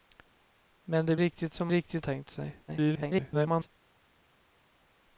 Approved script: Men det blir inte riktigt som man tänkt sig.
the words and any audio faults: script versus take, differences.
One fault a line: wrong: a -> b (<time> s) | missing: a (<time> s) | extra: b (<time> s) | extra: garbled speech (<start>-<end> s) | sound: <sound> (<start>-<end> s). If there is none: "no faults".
missing: blir inte (1.1 s)
wrong: man -> riktigt (1.7 s)
extra: garbled speech (2.7-3.7 s)